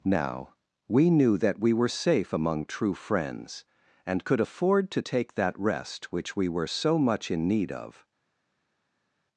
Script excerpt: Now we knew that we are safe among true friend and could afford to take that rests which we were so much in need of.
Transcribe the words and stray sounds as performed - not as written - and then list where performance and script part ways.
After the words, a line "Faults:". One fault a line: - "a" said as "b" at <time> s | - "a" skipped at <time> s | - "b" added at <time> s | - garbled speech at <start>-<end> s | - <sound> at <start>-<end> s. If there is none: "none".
Now we knew that we were safe among true friends and could afford to take that rest which we were so much in need of.
Faults:
- "are" said as "were" at 1.7 s
- "friend" said as "friends" at 3.0 s
- "rests" said as "rest" at 5.6 s